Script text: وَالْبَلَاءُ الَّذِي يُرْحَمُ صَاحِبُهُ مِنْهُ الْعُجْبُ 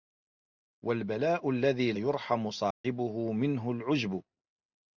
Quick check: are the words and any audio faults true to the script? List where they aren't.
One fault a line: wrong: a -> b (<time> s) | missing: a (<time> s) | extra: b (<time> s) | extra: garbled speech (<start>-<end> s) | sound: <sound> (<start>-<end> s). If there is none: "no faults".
sound: dropout (2.7-2.8 s)